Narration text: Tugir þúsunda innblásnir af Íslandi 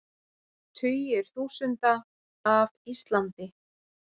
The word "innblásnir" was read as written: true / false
false